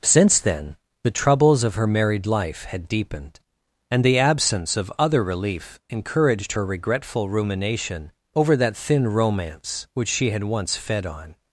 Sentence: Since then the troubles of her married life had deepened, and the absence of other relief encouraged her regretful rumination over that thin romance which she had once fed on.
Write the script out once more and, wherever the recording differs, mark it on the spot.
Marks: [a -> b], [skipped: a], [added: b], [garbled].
Since then the troubles of her married life had deepened, and the absence of other relief encouraged her regretful rumination over that thin romance which she had once fed on.